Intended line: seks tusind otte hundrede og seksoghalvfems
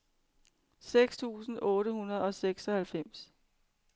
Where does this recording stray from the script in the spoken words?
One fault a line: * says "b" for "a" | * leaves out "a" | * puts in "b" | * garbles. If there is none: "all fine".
all fine